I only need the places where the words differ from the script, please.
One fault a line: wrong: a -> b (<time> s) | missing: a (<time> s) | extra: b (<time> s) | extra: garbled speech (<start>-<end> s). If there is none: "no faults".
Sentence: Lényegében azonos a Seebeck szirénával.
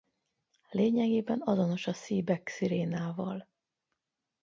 no faults